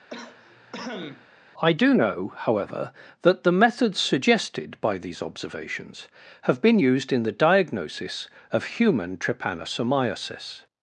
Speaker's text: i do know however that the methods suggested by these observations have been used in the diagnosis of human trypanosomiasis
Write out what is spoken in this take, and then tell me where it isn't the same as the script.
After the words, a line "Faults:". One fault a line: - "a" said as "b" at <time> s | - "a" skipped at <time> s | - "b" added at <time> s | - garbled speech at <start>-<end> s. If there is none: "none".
i do know however that the methods suggested by these observations have been used in the diagnosis of human trypanosomiasis
Faults:
none